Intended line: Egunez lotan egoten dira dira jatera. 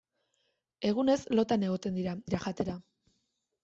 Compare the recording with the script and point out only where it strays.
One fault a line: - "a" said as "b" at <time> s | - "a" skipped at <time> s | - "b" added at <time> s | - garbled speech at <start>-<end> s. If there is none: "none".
none